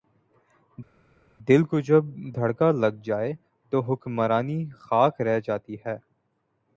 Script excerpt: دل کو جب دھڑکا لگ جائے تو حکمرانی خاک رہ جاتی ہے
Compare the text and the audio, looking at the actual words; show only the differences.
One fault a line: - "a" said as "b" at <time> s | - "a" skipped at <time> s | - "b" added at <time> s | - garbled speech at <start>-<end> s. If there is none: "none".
none